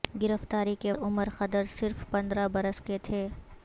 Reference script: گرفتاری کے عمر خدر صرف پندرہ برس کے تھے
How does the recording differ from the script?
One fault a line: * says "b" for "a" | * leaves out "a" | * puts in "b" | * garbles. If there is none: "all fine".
all fine